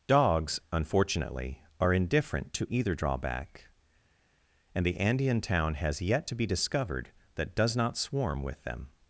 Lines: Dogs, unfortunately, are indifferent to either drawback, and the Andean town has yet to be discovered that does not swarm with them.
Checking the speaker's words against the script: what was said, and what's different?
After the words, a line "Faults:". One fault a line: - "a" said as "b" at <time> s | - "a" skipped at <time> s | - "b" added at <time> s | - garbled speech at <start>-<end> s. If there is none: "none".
Dogs, unfortunately, are indifferent to either drawback, and the Andean town has yet to be discovered that does not swarm with them.
Faults:
none